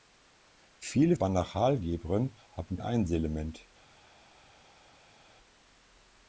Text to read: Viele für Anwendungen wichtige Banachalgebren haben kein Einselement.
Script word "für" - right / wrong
wrong